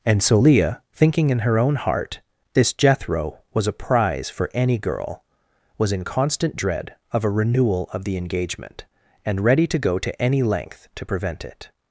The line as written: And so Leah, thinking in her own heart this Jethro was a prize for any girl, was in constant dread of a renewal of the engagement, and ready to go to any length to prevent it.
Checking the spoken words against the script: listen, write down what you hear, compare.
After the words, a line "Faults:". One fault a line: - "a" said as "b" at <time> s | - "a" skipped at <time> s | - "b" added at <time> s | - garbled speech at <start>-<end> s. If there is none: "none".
And so Leah, thinking in her own heart this Jethro was a prize for any girl, was in constant dread of a renewal of the engagement, and ready to go to any length to prevent it.
Faults:
none